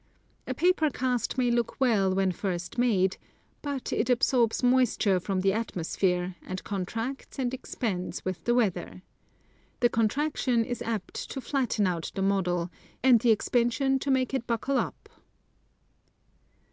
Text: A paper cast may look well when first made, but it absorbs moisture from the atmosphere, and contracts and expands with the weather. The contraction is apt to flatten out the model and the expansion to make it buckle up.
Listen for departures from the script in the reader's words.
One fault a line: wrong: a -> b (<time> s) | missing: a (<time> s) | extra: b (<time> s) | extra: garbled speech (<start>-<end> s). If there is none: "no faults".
no faults